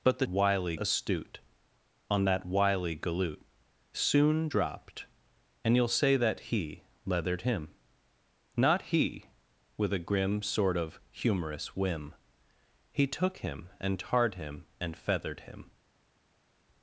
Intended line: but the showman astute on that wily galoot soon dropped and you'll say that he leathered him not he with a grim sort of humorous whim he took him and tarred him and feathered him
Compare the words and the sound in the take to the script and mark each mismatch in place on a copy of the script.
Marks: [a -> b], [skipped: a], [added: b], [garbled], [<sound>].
but the [showman -> wily] astute on that wily galoot soon dropped and you'll say that he leathered him not he with a grim sort of humorous whim he took him and tarred him and feathered him